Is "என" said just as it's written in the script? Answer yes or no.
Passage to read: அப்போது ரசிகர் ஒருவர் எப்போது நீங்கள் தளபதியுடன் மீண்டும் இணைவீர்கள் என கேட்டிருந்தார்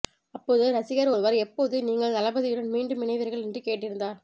no